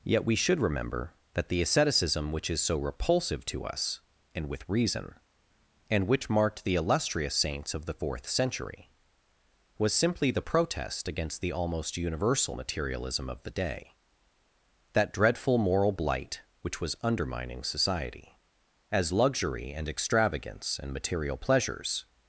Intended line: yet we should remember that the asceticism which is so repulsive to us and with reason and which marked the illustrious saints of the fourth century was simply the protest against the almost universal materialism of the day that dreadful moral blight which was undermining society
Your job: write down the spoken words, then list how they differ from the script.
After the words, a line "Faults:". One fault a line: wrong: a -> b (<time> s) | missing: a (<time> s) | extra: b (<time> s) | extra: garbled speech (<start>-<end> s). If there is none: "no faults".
yet we should remember that the asceticism which is so repulsive to us and with reason and which marked the illustrious saints of the fourth century was simply the protest against the almost universal materialism of the day that dreadful moral blight which was undermining society as luxury and extravagance and material pleasures
Faults:
extra: as luxury and extravagance and material pleasures (18.9 s)